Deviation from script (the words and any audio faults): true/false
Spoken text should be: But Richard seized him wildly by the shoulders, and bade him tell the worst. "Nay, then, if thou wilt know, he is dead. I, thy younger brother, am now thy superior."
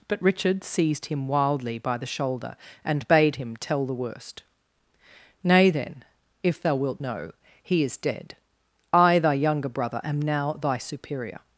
true